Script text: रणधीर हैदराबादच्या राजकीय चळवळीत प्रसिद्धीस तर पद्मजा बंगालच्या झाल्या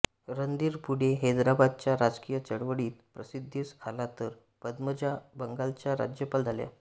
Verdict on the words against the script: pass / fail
fail